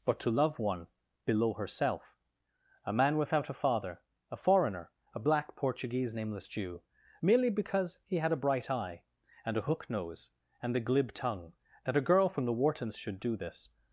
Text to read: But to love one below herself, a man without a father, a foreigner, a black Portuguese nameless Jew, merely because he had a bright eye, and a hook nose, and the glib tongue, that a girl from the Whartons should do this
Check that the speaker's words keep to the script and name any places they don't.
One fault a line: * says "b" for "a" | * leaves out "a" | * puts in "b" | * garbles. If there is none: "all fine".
all fine